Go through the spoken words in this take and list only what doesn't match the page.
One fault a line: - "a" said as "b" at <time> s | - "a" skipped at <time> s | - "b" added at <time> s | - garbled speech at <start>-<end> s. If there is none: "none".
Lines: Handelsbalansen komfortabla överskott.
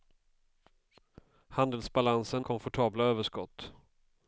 none